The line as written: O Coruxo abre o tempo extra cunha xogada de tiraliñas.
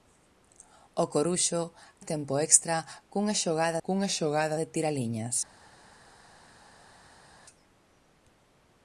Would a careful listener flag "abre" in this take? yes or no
yes